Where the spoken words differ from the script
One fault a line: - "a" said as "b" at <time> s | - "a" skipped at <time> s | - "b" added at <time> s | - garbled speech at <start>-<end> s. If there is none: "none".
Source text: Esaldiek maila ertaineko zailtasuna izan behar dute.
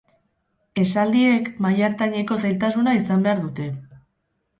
none